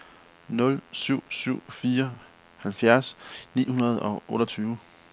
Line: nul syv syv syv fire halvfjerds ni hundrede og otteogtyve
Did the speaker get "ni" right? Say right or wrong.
right